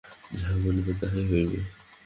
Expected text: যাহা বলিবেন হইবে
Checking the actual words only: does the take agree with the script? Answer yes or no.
no